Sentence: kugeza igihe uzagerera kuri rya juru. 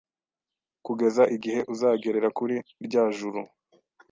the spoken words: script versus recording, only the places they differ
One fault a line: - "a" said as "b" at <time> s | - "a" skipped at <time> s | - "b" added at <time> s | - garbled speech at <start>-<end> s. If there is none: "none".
none